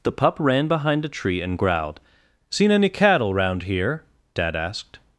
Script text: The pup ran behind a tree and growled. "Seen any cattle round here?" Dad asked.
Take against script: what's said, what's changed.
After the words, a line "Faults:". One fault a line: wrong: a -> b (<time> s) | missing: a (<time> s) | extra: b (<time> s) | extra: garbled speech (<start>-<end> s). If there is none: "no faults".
The pup ran behind a tree and growled. "Seen any cattle round here?" Dad asked.
Faults:
no faults